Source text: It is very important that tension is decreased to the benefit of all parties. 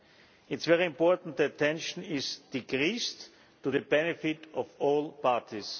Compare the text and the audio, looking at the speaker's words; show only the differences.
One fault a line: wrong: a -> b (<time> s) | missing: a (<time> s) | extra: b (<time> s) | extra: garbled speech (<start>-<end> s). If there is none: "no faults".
no faults